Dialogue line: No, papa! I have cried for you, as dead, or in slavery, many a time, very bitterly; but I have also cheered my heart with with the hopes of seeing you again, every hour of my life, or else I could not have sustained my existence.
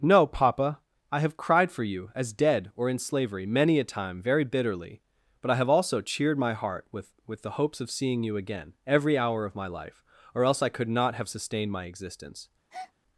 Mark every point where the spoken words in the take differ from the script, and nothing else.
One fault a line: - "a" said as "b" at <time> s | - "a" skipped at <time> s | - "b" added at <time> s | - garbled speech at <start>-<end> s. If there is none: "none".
none